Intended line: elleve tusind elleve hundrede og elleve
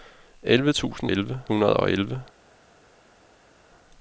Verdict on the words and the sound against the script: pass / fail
pass